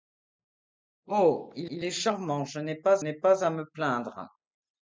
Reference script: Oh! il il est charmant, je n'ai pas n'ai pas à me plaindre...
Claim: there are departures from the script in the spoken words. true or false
false